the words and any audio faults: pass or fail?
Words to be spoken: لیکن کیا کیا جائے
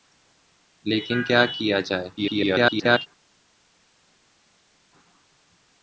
fail